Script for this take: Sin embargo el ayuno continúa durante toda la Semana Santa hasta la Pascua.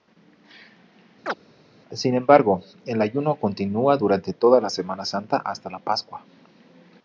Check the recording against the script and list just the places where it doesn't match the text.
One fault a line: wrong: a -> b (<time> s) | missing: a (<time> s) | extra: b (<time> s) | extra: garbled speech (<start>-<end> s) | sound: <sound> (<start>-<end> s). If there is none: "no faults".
sound: chirp (1.3-1.4 s)